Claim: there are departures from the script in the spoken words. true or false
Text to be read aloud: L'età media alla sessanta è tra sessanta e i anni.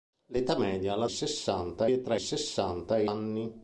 false